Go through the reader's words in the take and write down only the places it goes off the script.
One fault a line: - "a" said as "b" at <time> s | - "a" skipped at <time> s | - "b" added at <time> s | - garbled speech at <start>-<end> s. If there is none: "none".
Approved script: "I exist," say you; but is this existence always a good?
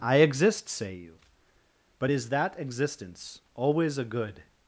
- "this" said as "that" at 2.3 s